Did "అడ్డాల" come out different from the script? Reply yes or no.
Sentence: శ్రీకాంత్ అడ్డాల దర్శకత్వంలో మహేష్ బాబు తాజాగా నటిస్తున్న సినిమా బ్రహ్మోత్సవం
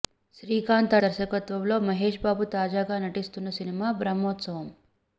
yes